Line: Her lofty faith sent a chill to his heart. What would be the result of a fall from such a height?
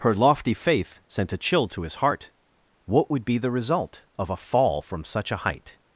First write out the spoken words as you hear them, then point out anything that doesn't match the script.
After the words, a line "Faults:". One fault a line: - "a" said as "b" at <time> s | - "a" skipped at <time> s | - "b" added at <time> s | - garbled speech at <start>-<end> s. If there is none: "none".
Her lofty faith sent a chill to his heart. What would be the result of a fall from such a height?
Faults:
none